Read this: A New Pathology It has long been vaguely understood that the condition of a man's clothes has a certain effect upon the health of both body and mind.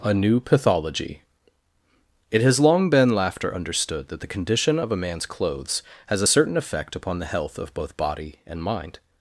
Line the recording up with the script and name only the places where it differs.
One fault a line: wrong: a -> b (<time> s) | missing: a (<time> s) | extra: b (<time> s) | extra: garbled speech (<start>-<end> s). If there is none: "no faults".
wrong: vaguely -> laughter (3.1 s)